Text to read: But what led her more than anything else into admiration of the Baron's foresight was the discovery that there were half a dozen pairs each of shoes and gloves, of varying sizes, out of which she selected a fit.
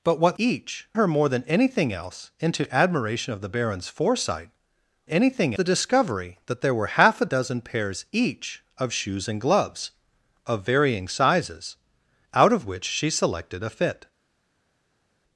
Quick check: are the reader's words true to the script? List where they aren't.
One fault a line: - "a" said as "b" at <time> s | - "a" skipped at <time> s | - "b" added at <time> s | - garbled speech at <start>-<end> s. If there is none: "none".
- "led" said as "each" at 0.4 s
- "was" said as "anything" at 5.1 s